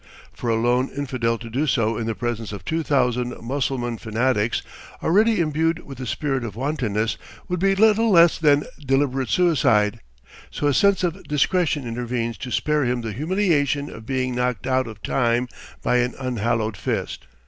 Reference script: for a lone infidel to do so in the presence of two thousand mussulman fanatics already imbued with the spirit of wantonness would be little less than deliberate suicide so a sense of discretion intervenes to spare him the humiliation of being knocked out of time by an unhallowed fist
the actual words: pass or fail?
pass